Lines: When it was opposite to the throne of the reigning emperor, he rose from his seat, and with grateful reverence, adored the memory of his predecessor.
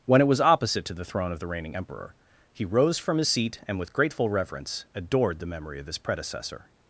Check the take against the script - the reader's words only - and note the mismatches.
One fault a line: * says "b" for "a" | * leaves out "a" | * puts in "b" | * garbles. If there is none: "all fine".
all fine